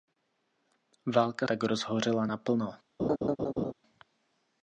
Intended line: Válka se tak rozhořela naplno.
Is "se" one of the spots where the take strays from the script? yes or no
yes